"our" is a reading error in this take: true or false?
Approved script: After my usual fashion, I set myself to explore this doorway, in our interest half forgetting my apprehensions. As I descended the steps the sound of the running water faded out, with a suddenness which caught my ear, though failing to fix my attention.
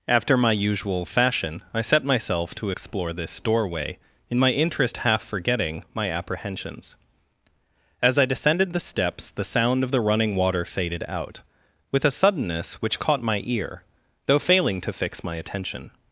true